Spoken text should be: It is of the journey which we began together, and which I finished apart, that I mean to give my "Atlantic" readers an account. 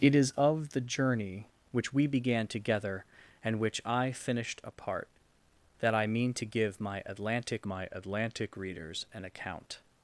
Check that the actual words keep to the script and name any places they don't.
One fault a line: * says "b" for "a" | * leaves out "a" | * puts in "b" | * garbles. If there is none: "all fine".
* puts in "my Atlantic"